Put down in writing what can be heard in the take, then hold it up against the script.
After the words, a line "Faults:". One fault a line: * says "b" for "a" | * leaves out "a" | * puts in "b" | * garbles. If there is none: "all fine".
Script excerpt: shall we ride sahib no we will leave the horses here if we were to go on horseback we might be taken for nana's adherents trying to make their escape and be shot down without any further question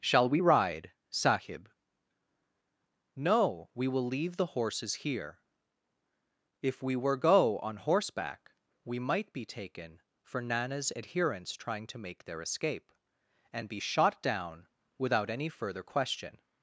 shall we ride sahib no we will leave the horses here if we were go on horseback we might be taken for nana's adherents trying to make their escape and be shot down without any further question
Faults:
* leaves out "to"